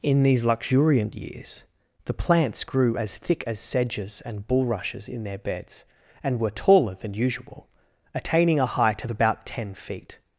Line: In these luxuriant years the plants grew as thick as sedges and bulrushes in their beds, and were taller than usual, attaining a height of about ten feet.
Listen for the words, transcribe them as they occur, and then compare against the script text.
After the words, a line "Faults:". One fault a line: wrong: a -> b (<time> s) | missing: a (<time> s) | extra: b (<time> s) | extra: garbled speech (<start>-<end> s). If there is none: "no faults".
In these luxuriant years the plants grew as thick as sedges and bulrushes in their beds, and were taller than usual, attaining a height of about ten feet.
Faults:
no faults